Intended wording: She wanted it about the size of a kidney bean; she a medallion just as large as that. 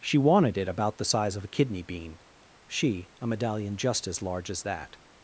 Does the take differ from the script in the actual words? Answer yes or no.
no